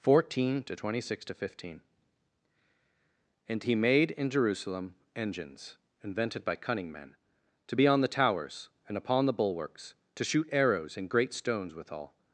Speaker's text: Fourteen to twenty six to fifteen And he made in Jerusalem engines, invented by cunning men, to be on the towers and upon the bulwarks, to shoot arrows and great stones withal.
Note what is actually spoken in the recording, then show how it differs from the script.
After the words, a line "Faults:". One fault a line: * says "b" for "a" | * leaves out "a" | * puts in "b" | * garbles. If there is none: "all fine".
Fourteen to twenty six to fifteen And he made in Jerusalem engines, invented by cunning men, to be on the towers and upon the bulwarks, to shoot arrows and great stones withal.
Faults:
all fine